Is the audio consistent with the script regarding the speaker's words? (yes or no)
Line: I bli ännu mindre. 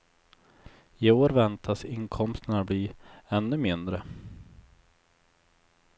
no